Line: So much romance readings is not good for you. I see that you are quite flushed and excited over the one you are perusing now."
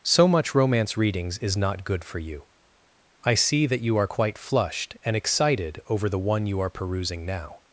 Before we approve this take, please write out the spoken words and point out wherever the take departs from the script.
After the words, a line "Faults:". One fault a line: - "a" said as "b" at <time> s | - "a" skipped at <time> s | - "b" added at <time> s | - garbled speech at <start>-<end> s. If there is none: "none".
So much romance readings is not good for you. I see that you are quite flushed and excited over the one you are perusing now."
Faults:
none